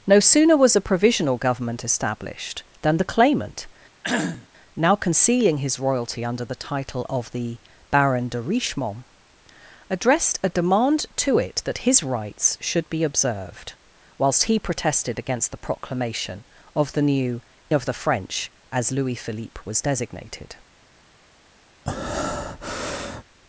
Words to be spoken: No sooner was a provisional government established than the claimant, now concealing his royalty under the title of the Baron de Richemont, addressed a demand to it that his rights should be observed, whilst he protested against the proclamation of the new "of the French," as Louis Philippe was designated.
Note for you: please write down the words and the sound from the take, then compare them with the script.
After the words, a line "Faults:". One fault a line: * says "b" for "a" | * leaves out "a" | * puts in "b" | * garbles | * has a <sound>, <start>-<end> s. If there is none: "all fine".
No sooner was a provisional government established than the claimant, now concealing his royalty under the title of the Baron de Richemont, addressed a demand to it that his rights should be observed, whilst he protested against the proclamation of the new "of the French," as Louis Philippe was designated.
Faults:
* has a cough, 4.0-4.5 s
* has a breath, 21.9-23.2 s